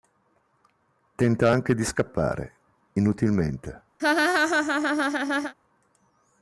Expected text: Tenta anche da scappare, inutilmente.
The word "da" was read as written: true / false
false